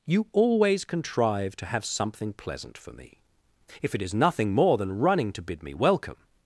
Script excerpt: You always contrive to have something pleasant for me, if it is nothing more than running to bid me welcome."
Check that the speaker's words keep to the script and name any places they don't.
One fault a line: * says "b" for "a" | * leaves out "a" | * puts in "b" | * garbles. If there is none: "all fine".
all fine